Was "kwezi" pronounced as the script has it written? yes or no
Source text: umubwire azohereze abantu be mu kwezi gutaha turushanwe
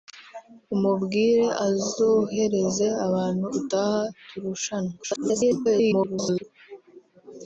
no